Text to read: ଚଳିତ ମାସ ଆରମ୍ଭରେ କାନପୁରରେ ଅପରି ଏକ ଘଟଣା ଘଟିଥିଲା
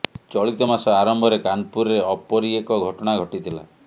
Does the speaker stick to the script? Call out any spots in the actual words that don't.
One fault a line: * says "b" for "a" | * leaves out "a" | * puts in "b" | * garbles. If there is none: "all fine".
all fine